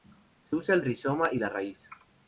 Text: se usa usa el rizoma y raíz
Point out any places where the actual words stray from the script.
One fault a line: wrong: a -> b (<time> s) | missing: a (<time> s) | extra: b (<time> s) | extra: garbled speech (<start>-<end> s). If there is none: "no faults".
missing: usa (0.7 s)
extra: la (1.4 s)